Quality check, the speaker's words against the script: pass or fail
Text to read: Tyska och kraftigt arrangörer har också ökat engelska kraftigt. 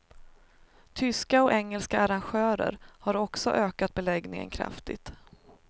fail